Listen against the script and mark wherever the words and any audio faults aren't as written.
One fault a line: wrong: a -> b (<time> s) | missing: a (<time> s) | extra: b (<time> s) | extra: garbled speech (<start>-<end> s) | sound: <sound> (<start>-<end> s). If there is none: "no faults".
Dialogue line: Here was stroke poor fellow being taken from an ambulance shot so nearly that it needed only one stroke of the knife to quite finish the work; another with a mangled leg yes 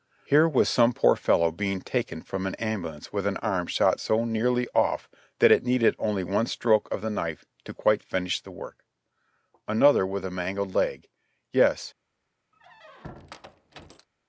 wrong: stroke -> some (0.7 s)
extra: with an arm (3.1 s)
extra: off (4.7 s)
sound: squeak (12.5-14.1 s)